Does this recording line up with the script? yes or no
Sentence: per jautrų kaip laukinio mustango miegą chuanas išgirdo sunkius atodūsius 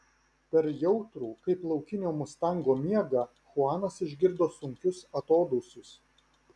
yes